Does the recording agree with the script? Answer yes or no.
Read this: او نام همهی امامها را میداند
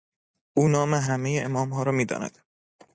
yes